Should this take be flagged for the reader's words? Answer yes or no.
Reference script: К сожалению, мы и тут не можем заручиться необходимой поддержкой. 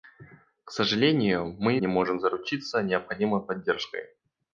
yes